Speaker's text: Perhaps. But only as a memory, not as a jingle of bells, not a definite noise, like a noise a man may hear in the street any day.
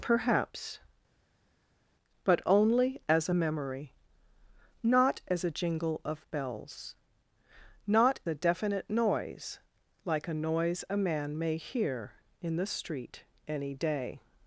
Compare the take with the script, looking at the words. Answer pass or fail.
pass